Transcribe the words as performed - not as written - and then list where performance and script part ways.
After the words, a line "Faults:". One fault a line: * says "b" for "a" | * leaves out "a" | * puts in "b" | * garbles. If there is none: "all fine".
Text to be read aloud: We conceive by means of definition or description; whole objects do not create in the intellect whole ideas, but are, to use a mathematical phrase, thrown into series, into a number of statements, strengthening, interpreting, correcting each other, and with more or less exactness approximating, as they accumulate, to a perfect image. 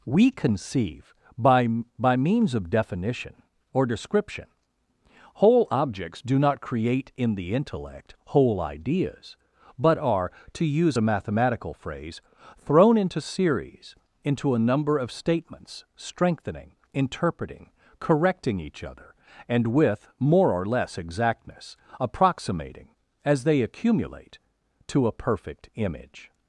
We conceive by by means of definition or description; whole objects do not create in the intellect whole ideas, but are, to use a mathematical phrase, thrown into series, into a number of statements, strengthening, interpreting, correcting each other, and with more or less exactness approximating, as they accumulate, to a perfect image.
Faults:
* puts in "by"